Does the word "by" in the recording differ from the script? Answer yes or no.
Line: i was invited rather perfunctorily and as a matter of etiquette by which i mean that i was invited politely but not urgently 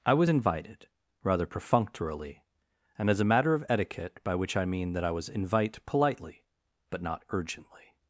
no